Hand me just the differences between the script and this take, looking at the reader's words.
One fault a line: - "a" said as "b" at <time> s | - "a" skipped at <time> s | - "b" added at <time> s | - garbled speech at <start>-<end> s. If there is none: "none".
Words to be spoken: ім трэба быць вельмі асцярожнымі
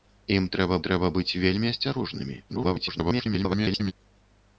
- "трэба" added at 0.9 s
- garbled speech at 2.5-3.9 s